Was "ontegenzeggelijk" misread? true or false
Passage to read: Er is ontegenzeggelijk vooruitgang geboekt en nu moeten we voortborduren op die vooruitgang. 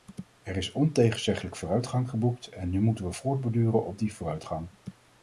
false